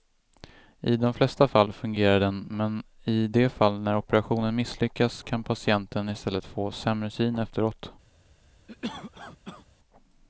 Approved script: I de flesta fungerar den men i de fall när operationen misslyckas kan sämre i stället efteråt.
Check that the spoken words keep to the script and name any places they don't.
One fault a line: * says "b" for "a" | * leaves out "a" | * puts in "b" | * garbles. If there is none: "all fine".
* puts in "fall"
* says "patienten" for "sämre"
* puts in "få sämre syn"